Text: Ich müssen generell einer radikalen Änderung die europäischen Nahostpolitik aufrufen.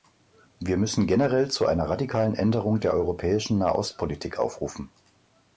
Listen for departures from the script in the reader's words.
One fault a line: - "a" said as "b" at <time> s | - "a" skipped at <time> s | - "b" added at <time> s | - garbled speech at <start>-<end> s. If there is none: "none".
- "Ich" said as "Wir" at 0.6 s
- "zu" added at 1.5 s
- "die" said as "der" at 2.8 s